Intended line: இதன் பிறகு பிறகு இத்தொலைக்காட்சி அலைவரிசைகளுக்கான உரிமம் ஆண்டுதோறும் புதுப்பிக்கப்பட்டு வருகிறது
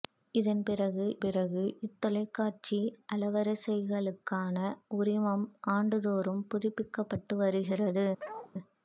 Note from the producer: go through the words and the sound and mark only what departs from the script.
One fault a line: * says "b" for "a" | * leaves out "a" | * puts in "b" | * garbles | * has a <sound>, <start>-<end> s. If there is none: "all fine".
* has a bark, 8.2-8.5 s